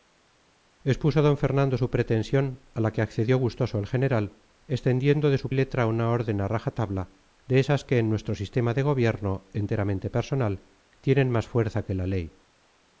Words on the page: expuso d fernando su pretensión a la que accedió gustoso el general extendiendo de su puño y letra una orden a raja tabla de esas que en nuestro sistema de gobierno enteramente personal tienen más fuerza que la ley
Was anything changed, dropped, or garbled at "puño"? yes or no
yes